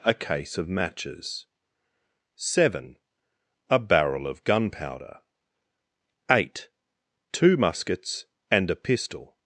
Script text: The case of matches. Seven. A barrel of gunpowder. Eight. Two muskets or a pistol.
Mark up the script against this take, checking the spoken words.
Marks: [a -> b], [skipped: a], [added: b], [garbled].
[The -> A] case of matches. Seven. A barrel of gunpowder. Eight. Two muskets [or -> and] a pistol.